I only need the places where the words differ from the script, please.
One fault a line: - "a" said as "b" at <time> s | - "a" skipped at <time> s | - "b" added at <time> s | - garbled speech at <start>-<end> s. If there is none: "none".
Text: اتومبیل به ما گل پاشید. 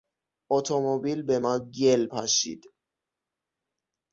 none